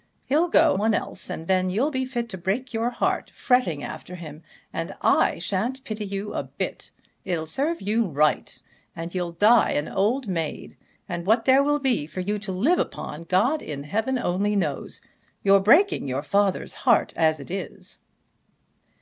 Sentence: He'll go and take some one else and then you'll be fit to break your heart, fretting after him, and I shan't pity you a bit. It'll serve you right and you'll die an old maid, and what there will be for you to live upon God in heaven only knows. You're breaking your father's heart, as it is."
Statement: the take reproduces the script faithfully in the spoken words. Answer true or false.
false